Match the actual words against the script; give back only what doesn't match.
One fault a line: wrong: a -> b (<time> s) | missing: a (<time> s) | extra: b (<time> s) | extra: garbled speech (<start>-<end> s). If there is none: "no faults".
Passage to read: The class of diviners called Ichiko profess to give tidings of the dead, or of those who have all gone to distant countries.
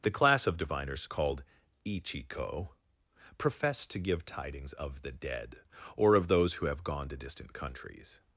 missing: all (6.8 s)